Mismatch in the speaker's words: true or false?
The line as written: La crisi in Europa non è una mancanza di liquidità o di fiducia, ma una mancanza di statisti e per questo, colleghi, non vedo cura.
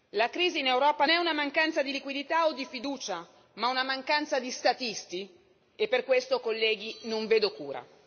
true